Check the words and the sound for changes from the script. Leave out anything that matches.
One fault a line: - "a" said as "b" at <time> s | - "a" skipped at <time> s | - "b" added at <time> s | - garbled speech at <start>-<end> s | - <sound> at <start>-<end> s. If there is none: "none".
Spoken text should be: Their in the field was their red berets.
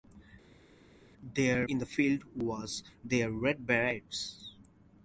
none